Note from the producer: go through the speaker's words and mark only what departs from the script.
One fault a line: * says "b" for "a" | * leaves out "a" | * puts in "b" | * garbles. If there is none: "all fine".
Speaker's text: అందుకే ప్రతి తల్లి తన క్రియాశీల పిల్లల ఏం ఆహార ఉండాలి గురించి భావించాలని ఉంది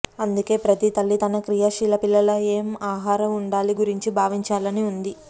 all fine